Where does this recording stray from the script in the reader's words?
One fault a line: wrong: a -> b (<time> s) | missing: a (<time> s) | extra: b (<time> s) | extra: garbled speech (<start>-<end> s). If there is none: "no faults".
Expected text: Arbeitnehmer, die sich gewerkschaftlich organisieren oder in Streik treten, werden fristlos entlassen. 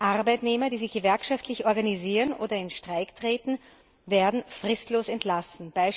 no faults